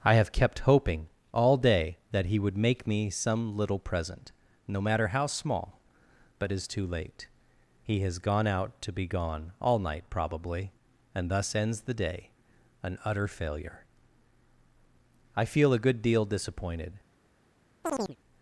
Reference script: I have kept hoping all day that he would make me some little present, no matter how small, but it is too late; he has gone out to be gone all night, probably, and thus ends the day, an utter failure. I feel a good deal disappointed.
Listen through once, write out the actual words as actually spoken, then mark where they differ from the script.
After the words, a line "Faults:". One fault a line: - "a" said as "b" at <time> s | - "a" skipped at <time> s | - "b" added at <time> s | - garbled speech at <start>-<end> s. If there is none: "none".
I have kept hoping all day that he would make me some little present, no matter how small, but it is too late; he has gone out to be gone all night, probably, and thus ends the day, an utter failure. I feel a good deal disappointed.
Faults:
none